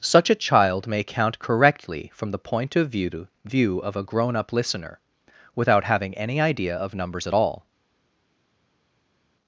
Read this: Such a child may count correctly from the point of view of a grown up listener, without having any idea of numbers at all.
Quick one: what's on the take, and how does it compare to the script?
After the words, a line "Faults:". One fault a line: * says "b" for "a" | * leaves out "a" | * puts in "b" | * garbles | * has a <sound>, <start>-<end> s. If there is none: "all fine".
Such a child may count correctly from the point of view view of a grown up listener, without having any idea of numbers at all.
Faults:
* puts in "view"